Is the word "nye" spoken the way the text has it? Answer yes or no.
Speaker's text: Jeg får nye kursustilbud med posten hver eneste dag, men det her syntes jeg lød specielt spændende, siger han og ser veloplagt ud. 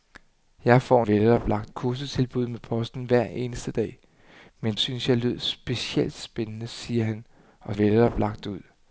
no